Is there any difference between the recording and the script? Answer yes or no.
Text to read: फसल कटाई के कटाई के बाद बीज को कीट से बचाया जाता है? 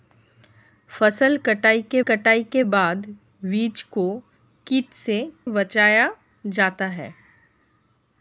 no